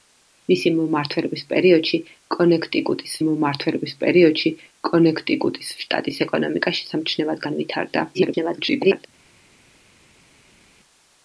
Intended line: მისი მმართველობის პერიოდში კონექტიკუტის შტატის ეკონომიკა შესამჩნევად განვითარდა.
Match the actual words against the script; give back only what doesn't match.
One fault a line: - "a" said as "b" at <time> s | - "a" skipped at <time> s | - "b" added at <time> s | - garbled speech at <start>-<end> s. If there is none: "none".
- "მმართველობის პერიოდში კონექტიკუტის" added at 3.3 s
- garbled speech at 8.1-9.1 s